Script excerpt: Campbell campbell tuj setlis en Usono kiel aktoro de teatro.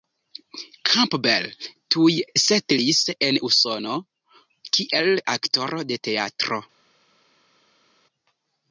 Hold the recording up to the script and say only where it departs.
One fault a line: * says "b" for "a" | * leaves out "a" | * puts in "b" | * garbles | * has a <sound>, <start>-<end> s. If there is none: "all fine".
* leaves out "campbell"